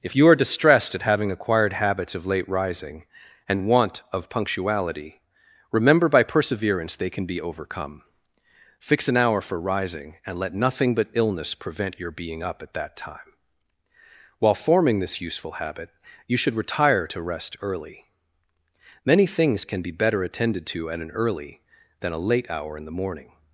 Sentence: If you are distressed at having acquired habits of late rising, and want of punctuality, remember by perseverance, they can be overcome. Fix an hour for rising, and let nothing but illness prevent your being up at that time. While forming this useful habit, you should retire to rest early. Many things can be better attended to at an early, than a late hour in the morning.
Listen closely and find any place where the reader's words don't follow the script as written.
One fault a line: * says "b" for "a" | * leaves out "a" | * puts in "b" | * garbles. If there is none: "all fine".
all fine